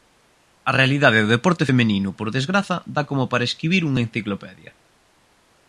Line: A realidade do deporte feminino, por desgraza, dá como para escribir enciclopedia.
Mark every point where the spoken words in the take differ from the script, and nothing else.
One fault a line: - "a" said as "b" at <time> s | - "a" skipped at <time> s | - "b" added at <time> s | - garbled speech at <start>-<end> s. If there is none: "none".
- "unha" added at 3.9 s